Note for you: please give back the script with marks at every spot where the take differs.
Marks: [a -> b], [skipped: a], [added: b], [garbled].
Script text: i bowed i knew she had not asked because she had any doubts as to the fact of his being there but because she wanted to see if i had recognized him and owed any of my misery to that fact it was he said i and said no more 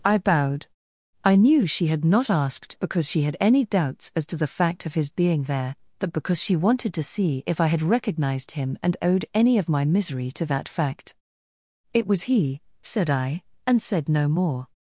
i bowed i knew she had not asked because she had any doubts as to the fact of his being there but because she wanted to see if i had recognized him and owed any of my misery to that fact it was he said i and said no more